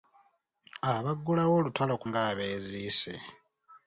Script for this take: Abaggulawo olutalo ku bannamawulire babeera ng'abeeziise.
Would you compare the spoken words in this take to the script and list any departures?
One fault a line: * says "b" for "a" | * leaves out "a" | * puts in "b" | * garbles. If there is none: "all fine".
* leaves out "bannamawulire babeera"